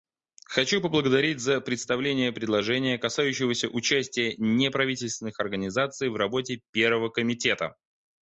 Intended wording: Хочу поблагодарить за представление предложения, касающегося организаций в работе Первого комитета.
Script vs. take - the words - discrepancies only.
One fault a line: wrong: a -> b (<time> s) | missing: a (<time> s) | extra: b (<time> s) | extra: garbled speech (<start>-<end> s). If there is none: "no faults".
extra: участия неправительственных (3.7 s)